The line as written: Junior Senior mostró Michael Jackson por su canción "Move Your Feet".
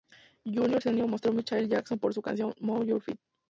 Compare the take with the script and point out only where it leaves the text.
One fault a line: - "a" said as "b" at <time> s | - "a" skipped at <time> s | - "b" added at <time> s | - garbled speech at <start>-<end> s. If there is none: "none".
none